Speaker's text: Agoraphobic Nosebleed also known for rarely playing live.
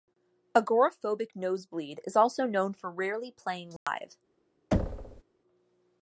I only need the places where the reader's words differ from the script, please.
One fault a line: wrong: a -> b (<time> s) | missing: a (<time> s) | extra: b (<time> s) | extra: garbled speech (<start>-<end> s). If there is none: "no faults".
extra: is (2.0 s)